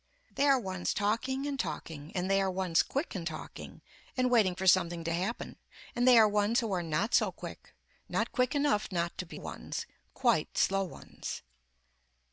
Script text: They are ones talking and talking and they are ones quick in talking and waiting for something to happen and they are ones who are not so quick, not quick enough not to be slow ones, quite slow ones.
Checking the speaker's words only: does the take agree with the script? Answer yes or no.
no